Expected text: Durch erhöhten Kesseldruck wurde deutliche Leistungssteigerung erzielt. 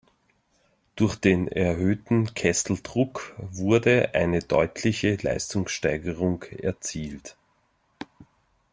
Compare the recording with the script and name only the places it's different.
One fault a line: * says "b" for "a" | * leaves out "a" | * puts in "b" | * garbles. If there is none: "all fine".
* puts in "den"
* puts in "eine"